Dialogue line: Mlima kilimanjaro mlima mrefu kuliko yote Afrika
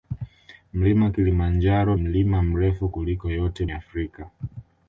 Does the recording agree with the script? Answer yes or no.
yes